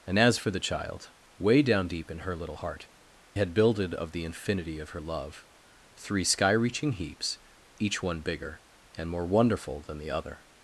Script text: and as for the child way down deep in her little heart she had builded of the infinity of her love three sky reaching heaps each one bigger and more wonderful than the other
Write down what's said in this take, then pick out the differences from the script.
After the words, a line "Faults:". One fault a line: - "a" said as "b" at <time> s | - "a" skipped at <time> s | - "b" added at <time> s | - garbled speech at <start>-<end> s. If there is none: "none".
and as for the child way down deep in her little heart had builded of the infinity of her love three sky reaching heaps each one bigger and more wonderful than the other
Faults:
- "she" skipped at 2.9 s